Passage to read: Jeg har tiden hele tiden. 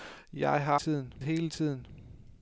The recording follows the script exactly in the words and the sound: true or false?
true